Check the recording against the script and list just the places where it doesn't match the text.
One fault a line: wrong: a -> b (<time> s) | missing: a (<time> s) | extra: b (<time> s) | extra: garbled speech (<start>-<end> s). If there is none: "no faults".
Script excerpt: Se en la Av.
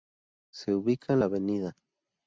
extra: ubica (0.7 s)